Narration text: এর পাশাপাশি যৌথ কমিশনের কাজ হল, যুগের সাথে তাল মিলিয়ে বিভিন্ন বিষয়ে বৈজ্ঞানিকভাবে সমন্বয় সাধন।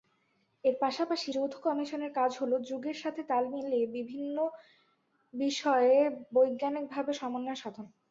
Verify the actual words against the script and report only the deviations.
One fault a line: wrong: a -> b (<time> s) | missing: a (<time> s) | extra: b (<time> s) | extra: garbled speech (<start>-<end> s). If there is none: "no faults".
no faults